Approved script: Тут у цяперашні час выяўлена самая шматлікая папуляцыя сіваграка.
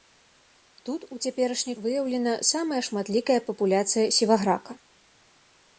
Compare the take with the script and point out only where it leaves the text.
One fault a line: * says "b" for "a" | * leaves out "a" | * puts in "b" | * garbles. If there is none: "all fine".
* leaves out "час"